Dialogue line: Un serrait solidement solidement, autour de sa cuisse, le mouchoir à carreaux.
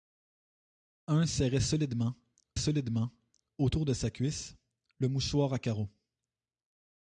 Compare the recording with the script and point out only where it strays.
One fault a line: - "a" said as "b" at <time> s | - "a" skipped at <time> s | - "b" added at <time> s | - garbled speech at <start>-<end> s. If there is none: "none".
none